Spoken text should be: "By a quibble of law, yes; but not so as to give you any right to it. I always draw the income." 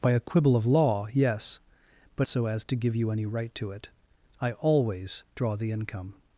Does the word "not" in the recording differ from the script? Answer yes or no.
yes